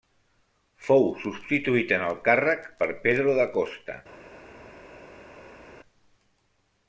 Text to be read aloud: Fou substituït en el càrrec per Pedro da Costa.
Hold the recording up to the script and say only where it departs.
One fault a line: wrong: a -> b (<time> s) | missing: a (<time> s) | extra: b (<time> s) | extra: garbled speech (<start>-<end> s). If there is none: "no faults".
no faults